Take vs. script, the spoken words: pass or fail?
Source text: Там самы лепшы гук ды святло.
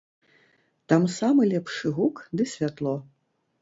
pass